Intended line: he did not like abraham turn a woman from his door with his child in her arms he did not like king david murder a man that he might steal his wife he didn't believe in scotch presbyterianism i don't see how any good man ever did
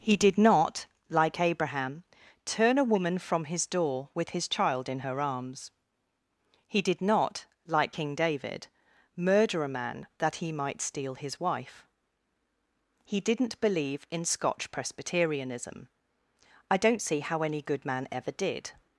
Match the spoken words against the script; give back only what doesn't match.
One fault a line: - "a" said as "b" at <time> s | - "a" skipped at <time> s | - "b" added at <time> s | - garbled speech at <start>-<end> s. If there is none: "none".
none